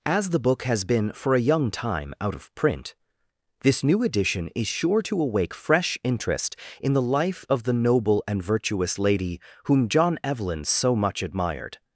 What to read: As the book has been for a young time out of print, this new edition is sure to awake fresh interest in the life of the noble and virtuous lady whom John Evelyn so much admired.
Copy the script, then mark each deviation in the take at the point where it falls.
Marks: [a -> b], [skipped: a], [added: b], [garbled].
As the book has been for a young time out of print, this new edition is sure to awake fresh interest in the life of the noble and virtuous lady whom John Evelyn so much admired.